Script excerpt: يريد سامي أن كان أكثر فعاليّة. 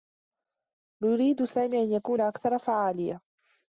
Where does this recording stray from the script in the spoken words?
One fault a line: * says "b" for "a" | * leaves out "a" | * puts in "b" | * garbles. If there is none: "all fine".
* says "يكون" for "كان"